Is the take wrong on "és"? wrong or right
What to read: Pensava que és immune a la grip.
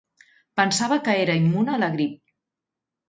wrong